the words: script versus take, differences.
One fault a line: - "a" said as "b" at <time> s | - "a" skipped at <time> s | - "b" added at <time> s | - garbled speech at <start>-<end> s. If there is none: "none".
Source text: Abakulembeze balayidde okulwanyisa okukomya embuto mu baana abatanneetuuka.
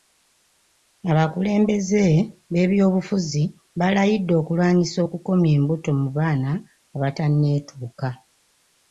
- "b'ebyobufuzi" added at 2.5 s